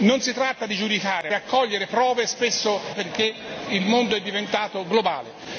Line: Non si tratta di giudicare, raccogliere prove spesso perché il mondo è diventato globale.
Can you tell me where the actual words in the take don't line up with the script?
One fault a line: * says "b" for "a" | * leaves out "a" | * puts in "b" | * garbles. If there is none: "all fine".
all fine